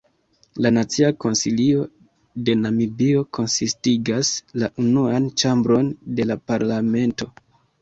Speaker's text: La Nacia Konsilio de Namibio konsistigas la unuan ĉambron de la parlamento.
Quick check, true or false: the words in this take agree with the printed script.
true